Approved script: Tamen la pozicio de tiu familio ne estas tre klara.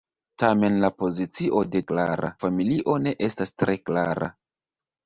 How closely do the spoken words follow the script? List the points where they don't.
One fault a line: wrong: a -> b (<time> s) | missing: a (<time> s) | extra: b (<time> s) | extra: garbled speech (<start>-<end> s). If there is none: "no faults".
wrong: tiu -> klara (1.9 s)